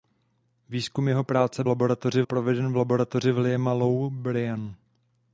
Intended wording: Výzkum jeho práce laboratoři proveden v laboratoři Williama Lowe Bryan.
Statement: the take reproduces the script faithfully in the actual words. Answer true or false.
true